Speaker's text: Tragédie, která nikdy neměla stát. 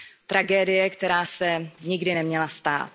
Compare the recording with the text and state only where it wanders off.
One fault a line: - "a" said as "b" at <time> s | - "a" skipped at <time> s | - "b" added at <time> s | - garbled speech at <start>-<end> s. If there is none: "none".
- "se" added at 1.2 s